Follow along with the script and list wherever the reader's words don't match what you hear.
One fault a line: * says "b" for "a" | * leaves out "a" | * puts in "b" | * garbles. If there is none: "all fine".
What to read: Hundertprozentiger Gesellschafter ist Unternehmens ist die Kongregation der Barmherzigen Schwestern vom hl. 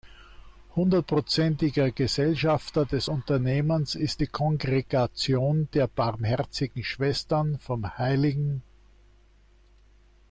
* says "des" for "ist"